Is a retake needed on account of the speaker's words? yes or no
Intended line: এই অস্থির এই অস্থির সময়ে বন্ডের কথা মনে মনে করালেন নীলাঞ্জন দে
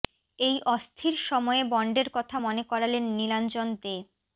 yes